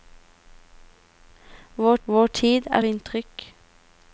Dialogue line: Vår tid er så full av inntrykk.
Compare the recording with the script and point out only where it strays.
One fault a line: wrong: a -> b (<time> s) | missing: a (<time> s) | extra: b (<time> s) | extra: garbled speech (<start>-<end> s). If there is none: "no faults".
extra: vår (2.0 s)
missing: så full av (2.8 s)